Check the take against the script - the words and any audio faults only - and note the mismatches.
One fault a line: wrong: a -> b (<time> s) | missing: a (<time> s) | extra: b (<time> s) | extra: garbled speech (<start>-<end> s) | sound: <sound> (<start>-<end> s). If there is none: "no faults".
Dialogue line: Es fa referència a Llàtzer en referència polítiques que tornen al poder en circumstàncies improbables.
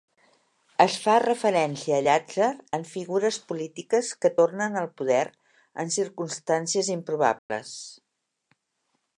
wrong: referència -> figures (2.9 s)
sound: dropout (7.4-7.5 s)